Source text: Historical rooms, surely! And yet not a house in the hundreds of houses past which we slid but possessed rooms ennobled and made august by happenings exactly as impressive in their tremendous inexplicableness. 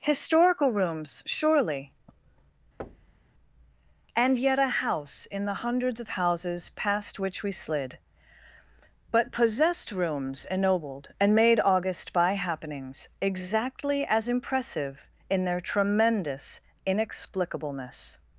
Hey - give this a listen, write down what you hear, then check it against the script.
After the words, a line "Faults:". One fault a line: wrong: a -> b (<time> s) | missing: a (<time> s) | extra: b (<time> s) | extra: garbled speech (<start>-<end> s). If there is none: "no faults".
Historical rooms, surely! And yet a house in the hundreds of houses past which we slid but possessed rooms ennobled and made august by happenings exactly as impressive in their tremendous inexplicableness.
Faults:
missing: not (4.6 s)